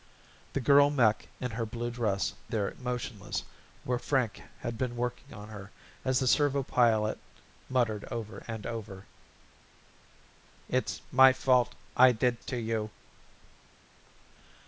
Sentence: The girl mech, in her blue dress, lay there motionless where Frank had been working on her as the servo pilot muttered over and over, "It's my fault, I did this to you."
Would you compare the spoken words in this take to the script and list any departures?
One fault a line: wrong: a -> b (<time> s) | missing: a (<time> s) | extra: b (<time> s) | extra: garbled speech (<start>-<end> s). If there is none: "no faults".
missing: lay (2.3 s)
missing: this (12.4 s)